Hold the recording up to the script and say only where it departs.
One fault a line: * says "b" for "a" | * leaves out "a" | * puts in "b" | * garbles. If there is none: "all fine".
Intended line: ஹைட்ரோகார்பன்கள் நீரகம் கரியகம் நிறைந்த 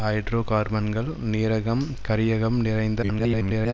* garbles